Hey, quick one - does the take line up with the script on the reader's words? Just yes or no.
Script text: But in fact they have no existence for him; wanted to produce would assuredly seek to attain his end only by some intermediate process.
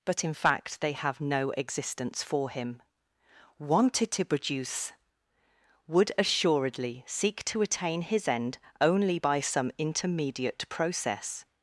yes